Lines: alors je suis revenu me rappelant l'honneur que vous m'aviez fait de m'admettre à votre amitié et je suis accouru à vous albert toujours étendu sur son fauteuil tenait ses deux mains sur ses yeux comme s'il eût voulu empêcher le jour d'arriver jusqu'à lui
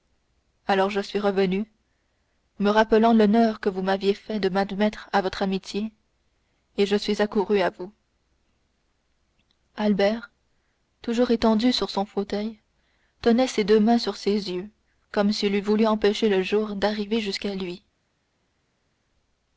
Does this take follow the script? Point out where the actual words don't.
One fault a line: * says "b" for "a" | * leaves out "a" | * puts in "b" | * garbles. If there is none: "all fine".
all fine